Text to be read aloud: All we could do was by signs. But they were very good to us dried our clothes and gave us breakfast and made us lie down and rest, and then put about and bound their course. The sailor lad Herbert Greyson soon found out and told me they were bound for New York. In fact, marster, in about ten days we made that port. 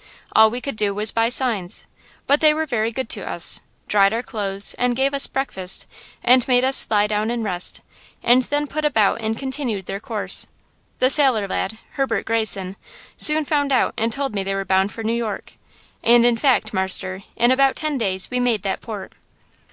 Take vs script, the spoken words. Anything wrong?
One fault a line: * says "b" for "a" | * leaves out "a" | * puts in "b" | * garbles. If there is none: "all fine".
* says "continued" for "bound"
* puts in "And"